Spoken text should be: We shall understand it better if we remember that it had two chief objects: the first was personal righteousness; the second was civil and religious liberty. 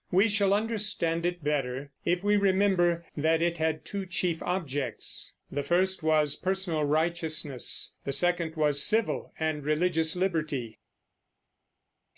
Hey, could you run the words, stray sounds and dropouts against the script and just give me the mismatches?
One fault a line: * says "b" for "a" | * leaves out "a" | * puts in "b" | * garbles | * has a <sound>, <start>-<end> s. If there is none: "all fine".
all fine